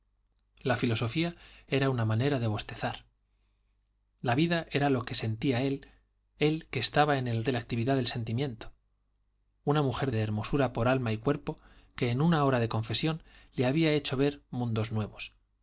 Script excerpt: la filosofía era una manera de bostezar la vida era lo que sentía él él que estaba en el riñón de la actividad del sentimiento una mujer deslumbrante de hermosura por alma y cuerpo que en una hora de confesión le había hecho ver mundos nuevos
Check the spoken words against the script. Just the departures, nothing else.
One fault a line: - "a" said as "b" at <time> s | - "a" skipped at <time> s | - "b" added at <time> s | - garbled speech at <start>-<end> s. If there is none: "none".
- "riñón" skipped at 7.5 s
- "deslumbrante" skipped at 10.1 s